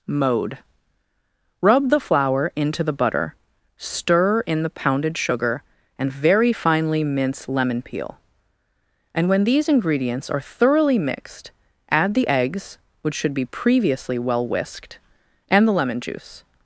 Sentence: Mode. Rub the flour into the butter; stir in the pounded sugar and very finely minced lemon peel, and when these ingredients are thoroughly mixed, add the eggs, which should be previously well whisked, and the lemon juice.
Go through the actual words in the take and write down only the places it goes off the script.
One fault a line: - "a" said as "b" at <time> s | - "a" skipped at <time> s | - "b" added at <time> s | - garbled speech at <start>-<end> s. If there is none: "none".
- "minced" said as "mince" at 7.0 s